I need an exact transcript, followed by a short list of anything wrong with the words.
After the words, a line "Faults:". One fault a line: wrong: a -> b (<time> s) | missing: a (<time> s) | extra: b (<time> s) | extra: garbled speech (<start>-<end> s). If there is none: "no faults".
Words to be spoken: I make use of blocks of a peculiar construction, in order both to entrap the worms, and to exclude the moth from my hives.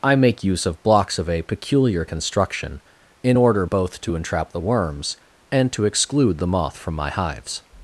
I make use of blocks of a peculiar construction, in order both to entrap the worms, and to exclude the moth from my hives.
Faults:
no faults